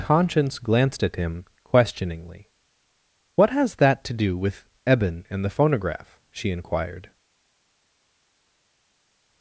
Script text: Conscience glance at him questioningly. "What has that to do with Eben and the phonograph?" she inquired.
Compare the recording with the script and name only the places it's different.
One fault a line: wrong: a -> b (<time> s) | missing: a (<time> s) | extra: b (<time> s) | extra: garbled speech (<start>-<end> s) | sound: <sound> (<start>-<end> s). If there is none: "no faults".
wrong: glance -> glanced (0.6 s)